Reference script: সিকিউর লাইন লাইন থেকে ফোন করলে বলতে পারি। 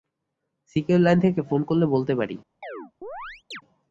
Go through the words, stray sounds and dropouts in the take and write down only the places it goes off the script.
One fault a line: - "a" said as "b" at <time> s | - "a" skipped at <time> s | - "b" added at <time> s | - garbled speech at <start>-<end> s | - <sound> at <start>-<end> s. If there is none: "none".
- "লাইন" skipped at 1.2 s
- chirp at 2.6-3.6 s